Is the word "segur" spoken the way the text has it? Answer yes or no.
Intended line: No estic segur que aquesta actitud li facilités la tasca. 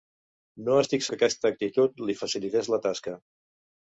no